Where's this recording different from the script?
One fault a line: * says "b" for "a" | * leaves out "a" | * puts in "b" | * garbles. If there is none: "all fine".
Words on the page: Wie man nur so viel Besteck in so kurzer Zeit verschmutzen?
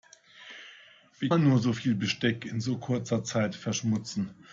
all fine